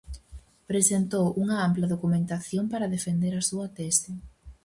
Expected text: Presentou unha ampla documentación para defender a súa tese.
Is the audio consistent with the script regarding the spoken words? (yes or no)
yes